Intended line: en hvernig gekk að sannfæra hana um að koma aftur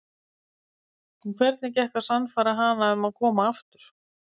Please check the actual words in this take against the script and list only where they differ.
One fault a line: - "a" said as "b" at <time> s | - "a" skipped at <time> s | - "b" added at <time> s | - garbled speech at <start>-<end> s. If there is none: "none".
none